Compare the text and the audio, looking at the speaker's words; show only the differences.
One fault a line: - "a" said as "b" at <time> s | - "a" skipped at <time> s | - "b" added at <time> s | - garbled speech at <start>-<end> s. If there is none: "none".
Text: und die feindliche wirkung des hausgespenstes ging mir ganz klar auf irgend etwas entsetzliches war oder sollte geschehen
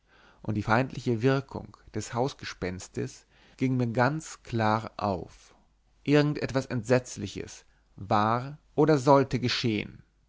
none